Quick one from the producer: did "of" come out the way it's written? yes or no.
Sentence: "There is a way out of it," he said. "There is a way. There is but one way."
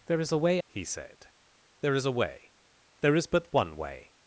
no